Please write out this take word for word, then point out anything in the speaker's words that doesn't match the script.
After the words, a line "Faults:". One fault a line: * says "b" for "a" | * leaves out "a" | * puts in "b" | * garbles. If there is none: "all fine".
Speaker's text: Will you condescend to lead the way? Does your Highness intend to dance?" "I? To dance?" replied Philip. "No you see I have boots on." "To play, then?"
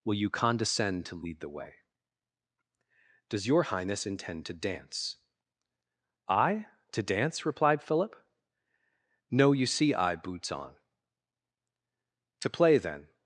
Will you condescend to lead the way? Does your Highness intend to dance?" "I? To dance?" replied Philip. "No you see I boots on." "To play, then?"
Faults:
* leaves out "have"